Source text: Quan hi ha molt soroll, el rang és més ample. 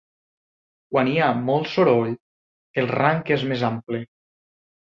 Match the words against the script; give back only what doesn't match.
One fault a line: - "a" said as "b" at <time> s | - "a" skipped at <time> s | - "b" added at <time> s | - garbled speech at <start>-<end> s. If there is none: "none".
none